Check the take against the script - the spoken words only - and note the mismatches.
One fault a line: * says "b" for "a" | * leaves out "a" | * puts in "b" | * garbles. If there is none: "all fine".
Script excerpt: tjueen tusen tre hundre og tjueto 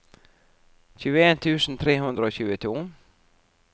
all fine